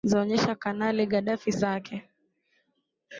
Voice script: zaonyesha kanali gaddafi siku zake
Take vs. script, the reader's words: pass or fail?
fail